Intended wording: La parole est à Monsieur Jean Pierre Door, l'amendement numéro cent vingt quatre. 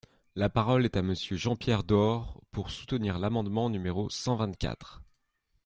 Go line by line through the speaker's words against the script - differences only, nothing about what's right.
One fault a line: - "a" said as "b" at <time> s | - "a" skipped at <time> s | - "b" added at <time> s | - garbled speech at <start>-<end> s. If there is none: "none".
- "pour soutenir" added at 2.5 s